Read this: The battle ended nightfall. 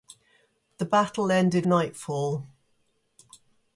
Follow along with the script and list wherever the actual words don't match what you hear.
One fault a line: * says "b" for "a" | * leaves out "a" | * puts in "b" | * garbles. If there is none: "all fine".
all fine